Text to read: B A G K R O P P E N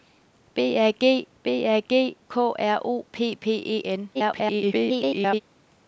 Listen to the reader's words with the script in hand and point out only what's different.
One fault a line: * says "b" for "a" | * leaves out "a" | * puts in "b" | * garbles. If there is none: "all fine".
* puts in "b A G"
* garbles